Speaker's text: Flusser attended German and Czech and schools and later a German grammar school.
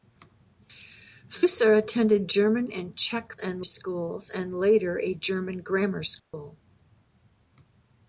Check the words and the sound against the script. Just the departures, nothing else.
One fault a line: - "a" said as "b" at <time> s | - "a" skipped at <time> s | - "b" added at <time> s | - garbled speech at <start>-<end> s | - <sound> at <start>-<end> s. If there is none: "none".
- dropout at 6.2-6.3 s